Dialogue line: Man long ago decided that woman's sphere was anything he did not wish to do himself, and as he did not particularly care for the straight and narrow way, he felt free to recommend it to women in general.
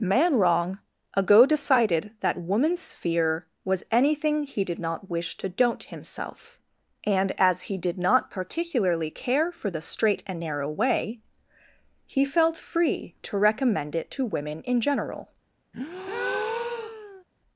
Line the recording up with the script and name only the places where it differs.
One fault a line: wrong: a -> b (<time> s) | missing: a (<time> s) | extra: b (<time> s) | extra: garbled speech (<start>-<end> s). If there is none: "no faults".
wrong: long -> wrong (0.4 s)
wrong: do -> don't (5.5 s)